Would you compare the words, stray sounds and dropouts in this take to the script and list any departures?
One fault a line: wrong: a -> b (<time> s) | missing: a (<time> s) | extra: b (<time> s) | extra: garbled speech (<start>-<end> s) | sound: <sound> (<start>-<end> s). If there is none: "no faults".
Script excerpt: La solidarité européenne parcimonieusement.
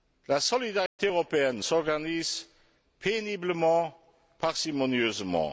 sound: dropout (0.9-1.0 s)
extra: s'organise péniblement (1.6 s)